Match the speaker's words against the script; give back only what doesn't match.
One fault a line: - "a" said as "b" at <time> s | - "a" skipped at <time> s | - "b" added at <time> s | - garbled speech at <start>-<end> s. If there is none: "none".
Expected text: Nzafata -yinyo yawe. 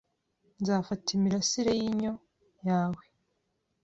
- "imirasire" added at 1.1 s